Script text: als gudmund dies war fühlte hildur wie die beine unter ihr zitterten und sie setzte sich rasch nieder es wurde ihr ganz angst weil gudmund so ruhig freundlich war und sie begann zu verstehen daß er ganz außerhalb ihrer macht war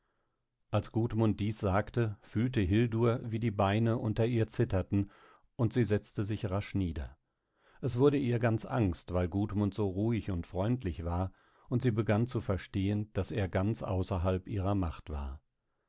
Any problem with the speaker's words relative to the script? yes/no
yes